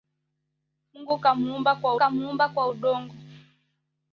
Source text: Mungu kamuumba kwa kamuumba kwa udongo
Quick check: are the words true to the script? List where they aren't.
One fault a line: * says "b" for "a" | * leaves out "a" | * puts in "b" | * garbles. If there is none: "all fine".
all fine